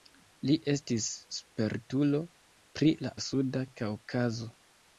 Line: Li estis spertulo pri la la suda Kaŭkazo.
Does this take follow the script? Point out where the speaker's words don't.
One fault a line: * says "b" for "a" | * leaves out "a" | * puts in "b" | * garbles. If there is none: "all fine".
all fine